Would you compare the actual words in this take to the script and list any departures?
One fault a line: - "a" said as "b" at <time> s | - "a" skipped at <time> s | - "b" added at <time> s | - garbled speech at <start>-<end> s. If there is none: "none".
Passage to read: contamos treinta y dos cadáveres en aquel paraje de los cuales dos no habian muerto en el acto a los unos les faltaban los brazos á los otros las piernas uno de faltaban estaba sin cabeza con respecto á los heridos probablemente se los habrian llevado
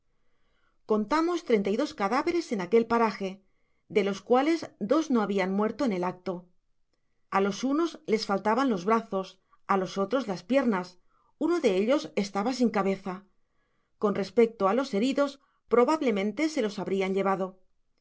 - "faltaban" said as "ellos" at 11.8 s